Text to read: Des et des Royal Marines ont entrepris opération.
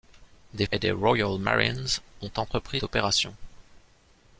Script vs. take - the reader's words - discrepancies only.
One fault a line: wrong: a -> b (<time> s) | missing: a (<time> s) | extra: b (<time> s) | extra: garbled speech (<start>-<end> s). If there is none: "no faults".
no faults